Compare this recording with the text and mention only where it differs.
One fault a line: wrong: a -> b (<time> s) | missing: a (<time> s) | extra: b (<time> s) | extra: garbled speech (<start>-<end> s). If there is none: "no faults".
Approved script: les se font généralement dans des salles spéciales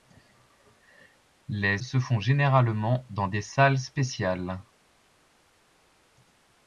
no faults